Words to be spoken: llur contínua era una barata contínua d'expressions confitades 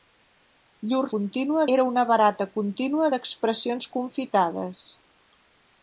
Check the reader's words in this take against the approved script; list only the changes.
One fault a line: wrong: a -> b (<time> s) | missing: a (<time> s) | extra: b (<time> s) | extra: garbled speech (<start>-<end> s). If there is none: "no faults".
no faults